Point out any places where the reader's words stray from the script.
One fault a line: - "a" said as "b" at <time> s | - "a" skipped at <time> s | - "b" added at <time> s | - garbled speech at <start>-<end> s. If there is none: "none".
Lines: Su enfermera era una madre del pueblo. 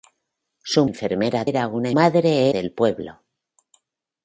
none